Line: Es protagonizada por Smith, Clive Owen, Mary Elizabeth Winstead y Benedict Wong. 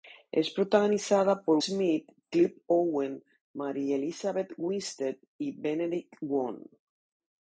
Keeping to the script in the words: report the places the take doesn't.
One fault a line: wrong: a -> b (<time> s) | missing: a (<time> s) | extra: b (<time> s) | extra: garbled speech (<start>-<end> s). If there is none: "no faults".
no faults